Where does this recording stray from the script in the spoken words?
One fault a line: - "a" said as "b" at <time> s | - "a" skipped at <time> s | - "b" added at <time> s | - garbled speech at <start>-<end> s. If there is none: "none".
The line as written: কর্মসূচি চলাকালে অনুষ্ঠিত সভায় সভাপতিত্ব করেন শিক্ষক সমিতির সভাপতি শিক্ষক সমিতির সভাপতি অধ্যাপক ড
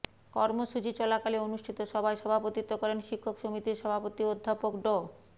- "শিক্ষক সমিতির সভাপতি" skipped at 4.2 s